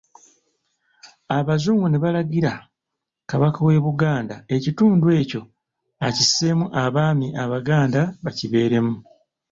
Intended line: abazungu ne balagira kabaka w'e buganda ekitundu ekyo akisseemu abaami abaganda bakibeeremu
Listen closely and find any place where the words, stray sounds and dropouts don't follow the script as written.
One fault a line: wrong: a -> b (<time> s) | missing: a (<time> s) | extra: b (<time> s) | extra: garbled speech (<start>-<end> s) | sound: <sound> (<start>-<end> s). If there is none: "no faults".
no faults